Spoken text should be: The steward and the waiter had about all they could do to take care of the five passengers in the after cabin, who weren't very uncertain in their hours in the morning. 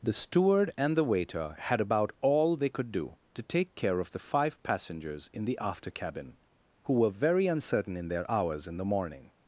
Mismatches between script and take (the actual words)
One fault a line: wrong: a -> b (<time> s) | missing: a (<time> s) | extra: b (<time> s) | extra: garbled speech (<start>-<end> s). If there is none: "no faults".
wrong: weren't -> were (6.9 s)